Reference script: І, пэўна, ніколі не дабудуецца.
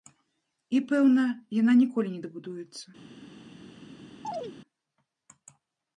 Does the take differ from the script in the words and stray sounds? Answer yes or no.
yes